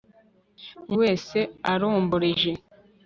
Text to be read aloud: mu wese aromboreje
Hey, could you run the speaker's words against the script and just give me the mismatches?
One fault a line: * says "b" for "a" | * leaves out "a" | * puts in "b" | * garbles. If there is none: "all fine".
all fine